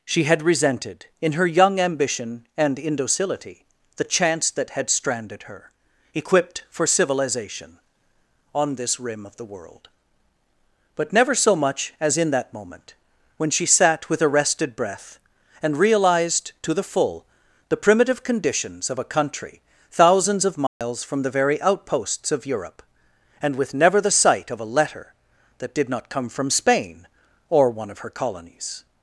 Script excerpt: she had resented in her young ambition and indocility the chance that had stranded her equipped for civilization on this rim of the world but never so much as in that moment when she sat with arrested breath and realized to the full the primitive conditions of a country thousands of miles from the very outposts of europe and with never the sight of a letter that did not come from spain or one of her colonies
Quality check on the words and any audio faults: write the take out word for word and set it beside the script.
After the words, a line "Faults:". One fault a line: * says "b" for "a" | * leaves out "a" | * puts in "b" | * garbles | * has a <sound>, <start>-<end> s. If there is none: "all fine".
she had resented in her young ambition and indocility the chance that had stranded her equipped for civilization on this rim of the world but never so much as in that moment when she sat with arrested breath and realized to the full the primitive conditions of a country thousands of miles from the very outposts of europe and with never the sight of a letter that did not come from spain or one of her colonies
Faults:
* has a dropout, 20.7-20.8 s